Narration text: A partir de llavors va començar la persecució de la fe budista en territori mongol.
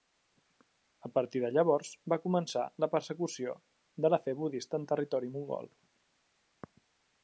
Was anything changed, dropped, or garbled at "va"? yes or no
no